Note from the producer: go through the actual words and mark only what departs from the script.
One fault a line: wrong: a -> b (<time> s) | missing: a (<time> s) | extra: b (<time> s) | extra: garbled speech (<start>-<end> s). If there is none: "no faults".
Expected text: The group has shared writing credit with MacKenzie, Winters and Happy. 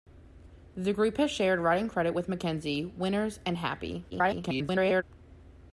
extra: garbled speech (4.1-5.0 s)